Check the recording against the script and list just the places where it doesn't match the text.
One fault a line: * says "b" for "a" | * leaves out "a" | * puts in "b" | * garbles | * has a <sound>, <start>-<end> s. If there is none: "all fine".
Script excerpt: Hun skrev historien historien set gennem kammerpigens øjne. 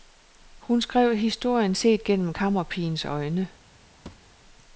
* leaves out "historien"
* has a thud, 4.1-4.4 s